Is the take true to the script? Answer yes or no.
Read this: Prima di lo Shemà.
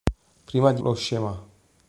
yes